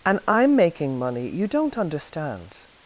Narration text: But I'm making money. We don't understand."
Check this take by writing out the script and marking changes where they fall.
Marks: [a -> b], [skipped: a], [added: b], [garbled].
[But -> And] I'm making money. [We -> You] don't understand."